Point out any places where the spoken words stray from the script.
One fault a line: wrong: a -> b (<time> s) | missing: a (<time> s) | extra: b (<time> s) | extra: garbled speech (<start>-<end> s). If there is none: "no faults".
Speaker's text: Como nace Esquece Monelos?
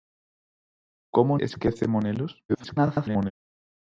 missing: nace (1.4 s)
extra: garbled speech (2.5-3.3 s)